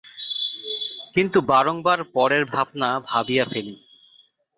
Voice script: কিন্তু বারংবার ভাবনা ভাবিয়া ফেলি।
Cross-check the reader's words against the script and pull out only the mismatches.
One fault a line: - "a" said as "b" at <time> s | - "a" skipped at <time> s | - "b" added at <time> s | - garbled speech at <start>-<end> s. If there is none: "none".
- "পরের" added at 2.1 s